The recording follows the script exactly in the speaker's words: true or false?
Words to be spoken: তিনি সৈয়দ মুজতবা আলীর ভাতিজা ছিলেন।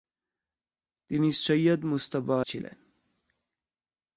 false